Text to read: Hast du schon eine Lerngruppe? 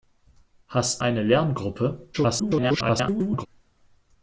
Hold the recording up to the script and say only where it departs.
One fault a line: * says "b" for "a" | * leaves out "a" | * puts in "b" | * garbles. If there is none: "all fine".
* leaves out "du schon"
* garbles